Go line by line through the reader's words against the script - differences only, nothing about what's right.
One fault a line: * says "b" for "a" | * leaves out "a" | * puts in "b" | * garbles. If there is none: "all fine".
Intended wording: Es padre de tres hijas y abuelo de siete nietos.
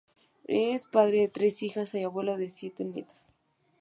all fine